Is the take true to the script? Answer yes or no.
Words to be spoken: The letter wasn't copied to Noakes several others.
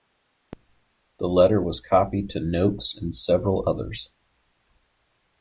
no